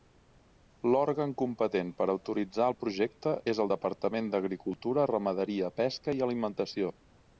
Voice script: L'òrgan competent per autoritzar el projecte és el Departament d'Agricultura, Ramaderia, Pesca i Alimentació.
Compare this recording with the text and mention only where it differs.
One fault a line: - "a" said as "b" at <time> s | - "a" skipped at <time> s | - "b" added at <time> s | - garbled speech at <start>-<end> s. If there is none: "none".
none